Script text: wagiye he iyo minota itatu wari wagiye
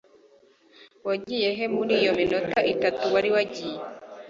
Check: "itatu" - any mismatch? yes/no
no